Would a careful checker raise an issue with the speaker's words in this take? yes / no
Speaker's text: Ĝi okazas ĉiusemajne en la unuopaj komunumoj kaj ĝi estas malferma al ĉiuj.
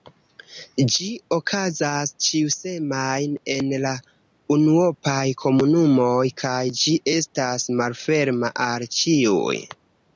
no